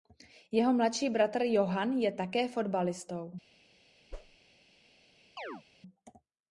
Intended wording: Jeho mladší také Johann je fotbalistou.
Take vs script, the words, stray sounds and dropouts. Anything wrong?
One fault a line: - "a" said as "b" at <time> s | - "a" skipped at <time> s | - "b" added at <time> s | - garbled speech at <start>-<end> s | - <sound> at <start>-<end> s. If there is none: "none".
- "také" said as "bratr" at 1.1 s
- "také" added at 2.1 s
- whoosh at 4.1-4.4 s
- chirp at 5.4-5.6 s